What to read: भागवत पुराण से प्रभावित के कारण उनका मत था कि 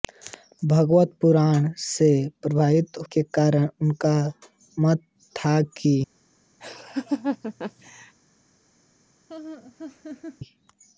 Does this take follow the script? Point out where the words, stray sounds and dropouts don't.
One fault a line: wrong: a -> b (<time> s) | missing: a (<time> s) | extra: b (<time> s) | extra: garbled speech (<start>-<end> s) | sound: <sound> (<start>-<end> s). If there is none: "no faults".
sound: laugh (6.6-8.1 s)
sound: laugh (9.3-10.4 s)